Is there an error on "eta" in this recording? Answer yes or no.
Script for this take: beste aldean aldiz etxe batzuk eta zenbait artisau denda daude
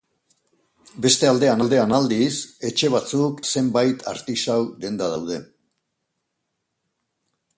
yes